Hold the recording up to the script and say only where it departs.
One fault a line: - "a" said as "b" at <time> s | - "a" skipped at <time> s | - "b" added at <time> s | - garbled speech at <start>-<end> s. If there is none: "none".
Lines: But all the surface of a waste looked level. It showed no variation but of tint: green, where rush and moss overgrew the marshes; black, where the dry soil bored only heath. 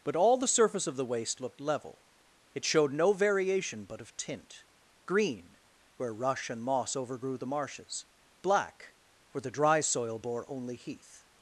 - "a" said as "the" at 0.9 s
- "bored" said as "bore" at 10.2 s